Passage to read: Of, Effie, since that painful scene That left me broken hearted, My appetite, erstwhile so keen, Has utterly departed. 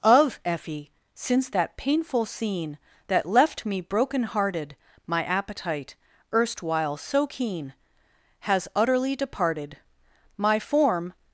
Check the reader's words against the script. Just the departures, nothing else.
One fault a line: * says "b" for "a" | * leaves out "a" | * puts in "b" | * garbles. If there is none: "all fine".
* puts in "My form"